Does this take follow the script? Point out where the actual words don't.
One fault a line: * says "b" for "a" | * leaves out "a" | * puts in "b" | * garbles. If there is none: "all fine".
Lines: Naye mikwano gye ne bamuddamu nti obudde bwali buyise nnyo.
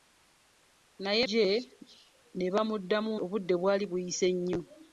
* leaves out "mikwano"
* leaves out "nti"